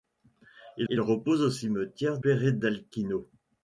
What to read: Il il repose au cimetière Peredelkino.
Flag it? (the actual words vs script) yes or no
no